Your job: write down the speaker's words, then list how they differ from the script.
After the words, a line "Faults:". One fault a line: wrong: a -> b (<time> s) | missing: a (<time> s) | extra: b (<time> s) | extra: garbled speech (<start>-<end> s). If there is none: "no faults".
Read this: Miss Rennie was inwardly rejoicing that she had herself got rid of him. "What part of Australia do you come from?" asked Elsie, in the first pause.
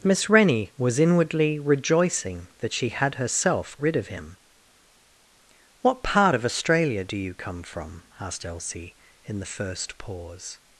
Miss Rennie was inwardly rejoicing that she had herself rid of him. "What part of Australia do you come from?" asked Elsie, in the first pause.
Faults:
missing: got (3.8 s)